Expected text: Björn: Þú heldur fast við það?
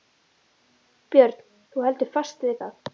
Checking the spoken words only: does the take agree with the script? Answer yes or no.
yes